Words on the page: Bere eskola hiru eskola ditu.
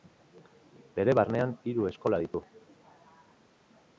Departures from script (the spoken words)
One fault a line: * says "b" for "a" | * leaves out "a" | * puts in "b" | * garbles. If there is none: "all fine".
* says "barnean" for "eskola"